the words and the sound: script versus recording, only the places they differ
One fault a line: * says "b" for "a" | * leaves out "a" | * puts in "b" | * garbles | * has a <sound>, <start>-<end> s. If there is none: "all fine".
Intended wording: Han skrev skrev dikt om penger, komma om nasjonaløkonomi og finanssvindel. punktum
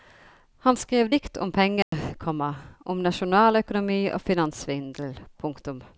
* leaves out "skrev"
* has a dropout, 1.8-1.9 s